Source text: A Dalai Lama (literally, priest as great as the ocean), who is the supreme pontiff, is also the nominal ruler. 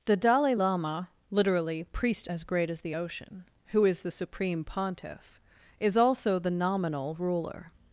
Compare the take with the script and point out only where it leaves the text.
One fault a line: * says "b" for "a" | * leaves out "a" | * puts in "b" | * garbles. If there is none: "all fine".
* says "The" for "A"